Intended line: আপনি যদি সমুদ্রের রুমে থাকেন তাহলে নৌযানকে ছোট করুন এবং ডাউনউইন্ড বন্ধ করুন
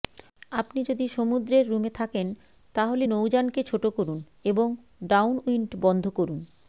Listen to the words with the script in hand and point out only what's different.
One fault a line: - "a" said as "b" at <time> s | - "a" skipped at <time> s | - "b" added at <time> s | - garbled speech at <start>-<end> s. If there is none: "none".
none